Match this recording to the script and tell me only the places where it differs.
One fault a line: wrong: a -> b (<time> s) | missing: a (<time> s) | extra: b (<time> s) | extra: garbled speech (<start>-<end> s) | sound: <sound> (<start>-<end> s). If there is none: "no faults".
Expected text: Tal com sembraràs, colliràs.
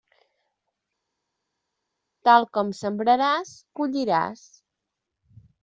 no faults